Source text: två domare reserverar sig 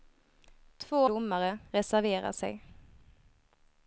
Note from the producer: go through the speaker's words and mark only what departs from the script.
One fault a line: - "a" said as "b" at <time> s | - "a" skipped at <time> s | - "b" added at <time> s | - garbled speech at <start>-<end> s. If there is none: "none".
none